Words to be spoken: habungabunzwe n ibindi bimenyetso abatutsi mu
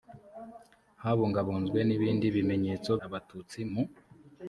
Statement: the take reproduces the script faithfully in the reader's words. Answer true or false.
true